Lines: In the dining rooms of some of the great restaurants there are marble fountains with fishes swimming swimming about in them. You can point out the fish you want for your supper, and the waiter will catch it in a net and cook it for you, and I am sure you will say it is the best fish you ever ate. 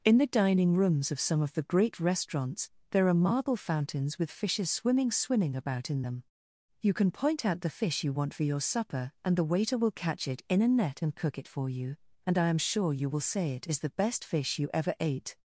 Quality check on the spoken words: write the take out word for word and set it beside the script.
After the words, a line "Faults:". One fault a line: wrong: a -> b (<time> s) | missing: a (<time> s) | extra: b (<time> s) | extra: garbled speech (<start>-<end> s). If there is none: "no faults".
In the dining rooms of some of the great restaurants there are marble fountains with fishes swimming swimming about in them. You can point out the fish you want for your supper, and the waiter will catch it in a net and cook it for you, and I am sure you will say it is the best fish you ever ate.
Faults:
no faults